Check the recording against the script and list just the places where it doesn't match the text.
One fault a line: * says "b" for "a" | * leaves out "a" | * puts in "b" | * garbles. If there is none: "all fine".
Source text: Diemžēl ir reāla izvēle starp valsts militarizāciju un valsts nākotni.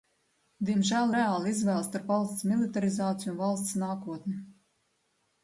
* leaves out "ir"